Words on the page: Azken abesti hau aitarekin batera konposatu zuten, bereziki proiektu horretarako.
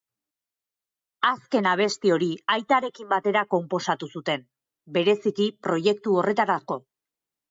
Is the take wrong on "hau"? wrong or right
wrong